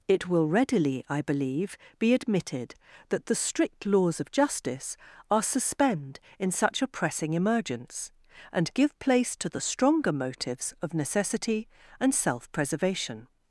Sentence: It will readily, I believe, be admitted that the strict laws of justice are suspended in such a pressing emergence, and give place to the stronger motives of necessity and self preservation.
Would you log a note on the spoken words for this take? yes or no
yes